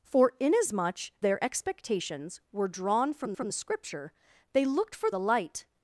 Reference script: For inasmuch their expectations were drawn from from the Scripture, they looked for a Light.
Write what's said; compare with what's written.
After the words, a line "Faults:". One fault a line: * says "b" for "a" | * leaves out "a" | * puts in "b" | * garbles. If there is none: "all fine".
For inasmuch their expectations were drawn from from the Scripture, they looked for a Light.
Faults:
all fine